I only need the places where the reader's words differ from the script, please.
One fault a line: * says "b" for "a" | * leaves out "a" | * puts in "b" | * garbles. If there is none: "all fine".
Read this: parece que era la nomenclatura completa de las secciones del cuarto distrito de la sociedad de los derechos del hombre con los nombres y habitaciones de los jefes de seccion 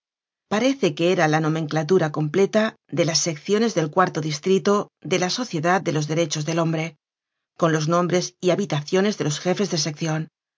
all fine